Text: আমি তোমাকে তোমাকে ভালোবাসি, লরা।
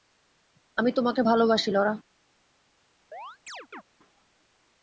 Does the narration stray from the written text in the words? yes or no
yes